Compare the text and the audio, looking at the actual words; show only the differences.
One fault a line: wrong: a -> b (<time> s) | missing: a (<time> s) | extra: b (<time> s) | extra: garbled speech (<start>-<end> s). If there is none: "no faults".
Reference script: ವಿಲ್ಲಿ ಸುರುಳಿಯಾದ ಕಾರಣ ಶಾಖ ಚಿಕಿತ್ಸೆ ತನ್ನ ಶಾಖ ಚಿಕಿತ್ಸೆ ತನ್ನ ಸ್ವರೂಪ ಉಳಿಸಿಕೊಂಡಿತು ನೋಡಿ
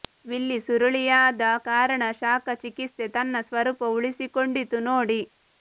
missing: ಶಾಖ ಚಿಕಿತ್ಸೆ ತನ್ನ (3.4 s)